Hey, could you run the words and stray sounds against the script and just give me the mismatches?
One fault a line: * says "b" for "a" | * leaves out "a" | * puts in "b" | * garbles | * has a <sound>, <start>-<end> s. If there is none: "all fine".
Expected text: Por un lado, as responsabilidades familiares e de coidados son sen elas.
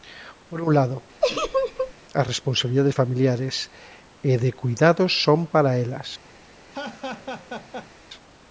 * has a laugh, 1.2-1.9 s
* says "para" for "sen"
* has a laugh, 6.7-7.9 s